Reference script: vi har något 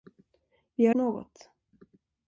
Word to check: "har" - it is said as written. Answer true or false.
true